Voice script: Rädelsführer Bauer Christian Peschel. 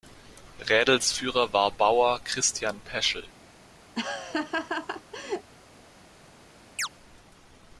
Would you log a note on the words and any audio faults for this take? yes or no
yes